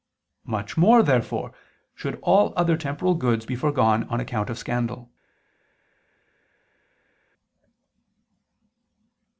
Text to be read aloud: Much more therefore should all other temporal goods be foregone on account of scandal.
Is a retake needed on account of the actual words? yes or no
no